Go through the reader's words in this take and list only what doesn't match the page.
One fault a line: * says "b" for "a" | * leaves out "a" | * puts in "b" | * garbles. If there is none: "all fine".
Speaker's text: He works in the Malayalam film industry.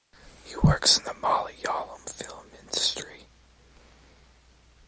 all fine